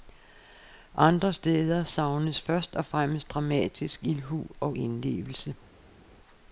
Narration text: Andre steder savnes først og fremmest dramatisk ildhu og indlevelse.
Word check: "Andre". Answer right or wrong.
right